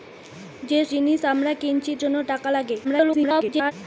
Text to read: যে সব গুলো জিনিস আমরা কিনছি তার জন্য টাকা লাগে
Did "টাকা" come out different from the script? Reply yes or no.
no